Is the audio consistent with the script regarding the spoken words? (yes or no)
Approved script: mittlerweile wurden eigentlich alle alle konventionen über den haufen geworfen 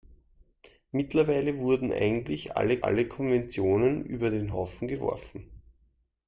yes